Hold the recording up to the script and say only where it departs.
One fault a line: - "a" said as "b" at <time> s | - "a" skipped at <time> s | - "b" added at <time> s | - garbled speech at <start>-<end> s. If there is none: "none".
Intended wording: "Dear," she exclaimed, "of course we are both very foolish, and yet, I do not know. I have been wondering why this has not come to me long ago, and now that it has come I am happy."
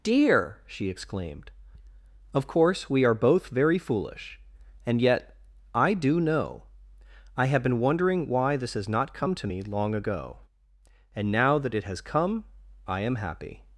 - "not" skipped at 6.2 s